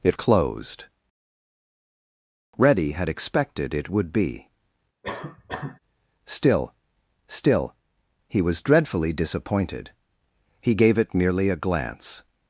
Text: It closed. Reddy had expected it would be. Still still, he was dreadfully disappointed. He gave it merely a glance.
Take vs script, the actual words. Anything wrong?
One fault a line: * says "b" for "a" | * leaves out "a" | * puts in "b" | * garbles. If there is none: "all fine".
all fine